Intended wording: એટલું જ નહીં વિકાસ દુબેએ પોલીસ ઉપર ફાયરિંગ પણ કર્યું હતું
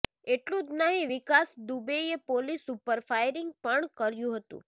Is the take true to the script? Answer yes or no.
yes